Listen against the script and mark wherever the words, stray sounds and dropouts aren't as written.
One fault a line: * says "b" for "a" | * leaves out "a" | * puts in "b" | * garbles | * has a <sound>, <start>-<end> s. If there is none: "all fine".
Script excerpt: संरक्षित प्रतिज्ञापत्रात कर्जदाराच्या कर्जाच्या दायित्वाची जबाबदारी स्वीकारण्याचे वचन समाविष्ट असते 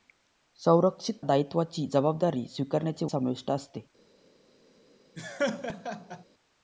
* leaves out "प्रतिज्ञापत्रात कर्जदाराच्या कर्जाच्या"
* leaves out "वचन"
* has a laugh, 5.2-6.2 s